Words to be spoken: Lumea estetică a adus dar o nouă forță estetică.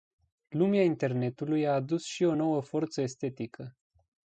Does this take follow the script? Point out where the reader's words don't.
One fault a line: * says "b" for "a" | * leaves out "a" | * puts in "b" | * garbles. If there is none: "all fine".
* says "internetului" for "estetică"
* says "și" for "dar"